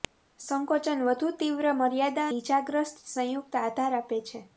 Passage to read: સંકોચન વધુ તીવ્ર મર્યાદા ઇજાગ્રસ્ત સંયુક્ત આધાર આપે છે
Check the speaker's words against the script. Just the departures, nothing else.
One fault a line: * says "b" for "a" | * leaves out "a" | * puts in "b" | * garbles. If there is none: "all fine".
all fine